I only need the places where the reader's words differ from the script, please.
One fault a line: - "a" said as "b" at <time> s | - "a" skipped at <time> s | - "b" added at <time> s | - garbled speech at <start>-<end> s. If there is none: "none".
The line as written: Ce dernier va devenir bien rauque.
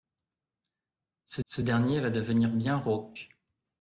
- "ce" added at 1.4 s